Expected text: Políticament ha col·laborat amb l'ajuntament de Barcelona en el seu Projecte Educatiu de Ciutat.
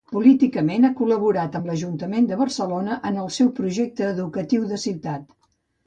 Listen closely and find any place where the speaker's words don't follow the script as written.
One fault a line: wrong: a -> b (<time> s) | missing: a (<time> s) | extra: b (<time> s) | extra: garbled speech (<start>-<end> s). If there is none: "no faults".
no faults